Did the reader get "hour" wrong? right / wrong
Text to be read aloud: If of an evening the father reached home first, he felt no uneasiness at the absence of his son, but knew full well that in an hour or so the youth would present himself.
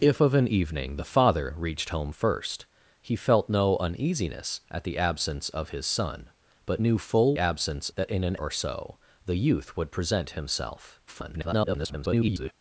wrong